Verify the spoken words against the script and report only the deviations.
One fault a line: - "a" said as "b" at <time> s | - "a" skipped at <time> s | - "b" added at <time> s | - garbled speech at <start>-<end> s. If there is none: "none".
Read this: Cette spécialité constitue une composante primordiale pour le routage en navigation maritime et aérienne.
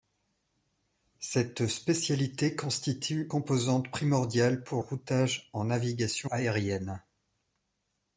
- "une" skipped at 3.3 s
- "le" skipped at 4.8 s
- "maritime et" skipped at 6.3 s